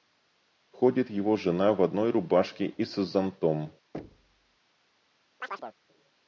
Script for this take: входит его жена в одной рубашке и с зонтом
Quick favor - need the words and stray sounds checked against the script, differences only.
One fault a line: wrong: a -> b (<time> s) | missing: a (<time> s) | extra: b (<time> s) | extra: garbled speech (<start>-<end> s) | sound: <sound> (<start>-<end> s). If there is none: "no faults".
sound: thud (3.9-4.6 s)
sound: chirp (5.4-5.8 s)